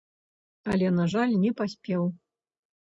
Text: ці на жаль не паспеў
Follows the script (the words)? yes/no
no